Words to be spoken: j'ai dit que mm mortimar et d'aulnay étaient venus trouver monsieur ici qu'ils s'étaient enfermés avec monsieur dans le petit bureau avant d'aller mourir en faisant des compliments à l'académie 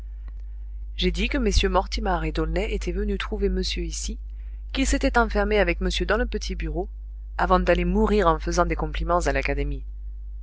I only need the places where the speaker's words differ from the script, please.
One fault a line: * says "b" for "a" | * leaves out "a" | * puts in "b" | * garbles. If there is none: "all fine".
all fine